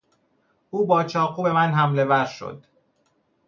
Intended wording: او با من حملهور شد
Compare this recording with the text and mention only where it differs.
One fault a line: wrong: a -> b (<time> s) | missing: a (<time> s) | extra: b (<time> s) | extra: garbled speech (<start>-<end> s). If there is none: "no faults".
extra: چاقو به (1.0 s)